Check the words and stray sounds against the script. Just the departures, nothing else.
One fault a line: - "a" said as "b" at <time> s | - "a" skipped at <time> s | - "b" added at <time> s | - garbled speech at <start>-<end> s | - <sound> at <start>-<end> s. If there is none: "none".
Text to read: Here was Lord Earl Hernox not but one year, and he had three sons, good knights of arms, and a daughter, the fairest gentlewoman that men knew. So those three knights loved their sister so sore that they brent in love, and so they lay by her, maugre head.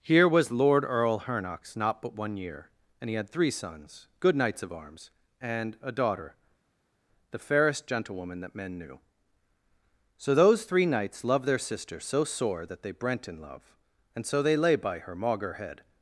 none